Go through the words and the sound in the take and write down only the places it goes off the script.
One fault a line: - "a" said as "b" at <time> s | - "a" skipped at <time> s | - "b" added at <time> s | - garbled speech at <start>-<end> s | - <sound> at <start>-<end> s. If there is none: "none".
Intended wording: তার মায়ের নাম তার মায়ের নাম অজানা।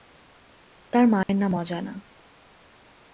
- dropout at 1.2-1.3 s
- "তার মায়ের নাম" skipped at 1.5 s